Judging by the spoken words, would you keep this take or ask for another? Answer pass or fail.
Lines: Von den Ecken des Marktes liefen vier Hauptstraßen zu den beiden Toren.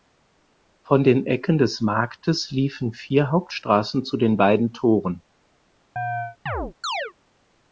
pass